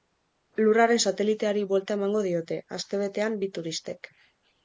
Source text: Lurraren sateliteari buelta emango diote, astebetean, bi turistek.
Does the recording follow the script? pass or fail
pass